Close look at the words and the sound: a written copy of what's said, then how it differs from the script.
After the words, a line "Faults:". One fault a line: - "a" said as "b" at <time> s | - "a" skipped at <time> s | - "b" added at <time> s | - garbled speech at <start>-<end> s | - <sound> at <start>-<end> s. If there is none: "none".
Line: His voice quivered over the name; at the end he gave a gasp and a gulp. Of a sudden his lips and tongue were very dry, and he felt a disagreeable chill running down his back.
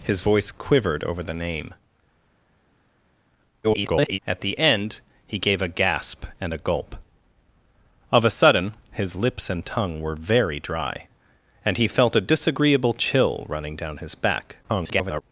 His voice quivered over the name; [garbled] at the end he gave a gasp and a gulp. Of a sudden his lips and tongue were very dry, and he felt a disagreeable chill running down his back. [garbled]
Faults:
- garbled speech at 3.6-4.2 s
- garbled speech at 14.6-15.2 s